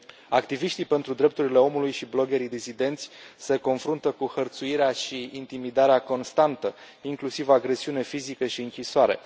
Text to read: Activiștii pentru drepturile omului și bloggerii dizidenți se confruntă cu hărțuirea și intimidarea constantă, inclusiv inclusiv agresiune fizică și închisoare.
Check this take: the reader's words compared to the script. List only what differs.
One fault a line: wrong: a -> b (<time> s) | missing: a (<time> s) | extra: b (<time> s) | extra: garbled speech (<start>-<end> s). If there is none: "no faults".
missing: inclusiv (7.5 s)